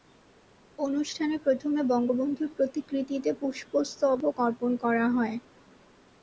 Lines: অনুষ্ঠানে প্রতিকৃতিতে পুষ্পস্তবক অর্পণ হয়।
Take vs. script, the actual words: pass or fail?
fail